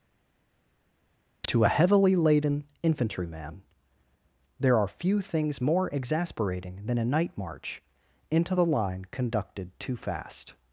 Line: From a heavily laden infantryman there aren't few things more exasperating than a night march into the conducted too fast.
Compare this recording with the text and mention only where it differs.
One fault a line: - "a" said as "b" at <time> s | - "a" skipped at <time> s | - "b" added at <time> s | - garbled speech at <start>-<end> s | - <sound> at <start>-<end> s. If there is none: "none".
- "From" said as "To" at 1.5 s
- "aren't" said as "are" at 4.8 s
- "line" added at 8.7 s